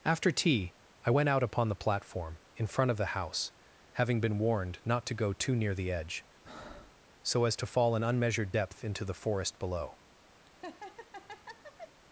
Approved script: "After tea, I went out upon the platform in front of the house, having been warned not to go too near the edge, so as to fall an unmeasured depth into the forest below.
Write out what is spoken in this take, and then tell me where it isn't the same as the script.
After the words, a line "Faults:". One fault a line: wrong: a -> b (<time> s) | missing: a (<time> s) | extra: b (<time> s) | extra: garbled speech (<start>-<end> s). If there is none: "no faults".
"After tea, I went out upon the platform in front of the house, having been warned not to go too near the edge, so as to fall an unmeasured depth into the forest below.
Faults:
no faults